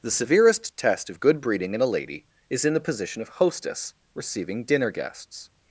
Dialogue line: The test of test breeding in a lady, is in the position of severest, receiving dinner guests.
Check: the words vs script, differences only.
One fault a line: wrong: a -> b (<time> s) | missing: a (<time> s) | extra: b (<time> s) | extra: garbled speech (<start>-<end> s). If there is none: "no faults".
extra: severest (0.1 s)
wrong: test -> good (1.2 s)
wrong: severest -> hostess (3.3 s)